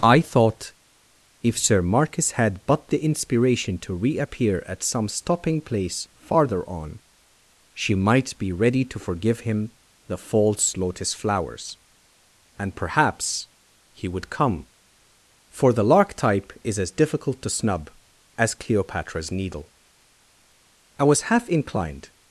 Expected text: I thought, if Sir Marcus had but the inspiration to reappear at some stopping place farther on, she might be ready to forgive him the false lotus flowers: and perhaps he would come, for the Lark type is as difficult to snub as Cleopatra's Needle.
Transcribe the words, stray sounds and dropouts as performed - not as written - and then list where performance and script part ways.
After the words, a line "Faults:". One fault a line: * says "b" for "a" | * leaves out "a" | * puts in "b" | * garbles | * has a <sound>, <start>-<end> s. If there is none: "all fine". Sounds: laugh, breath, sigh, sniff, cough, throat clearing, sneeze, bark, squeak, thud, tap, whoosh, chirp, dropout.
I thought, if Sir Marcus had but the inspiration to reappear at some stopping place farther on, she might be ready to forgive him the false lotus flowers: and perhaps he would come, for the Lark type is as difficult to snub as Cleopatra's Needle. I was half inclined
Faults:
* puts in "I was half inclined"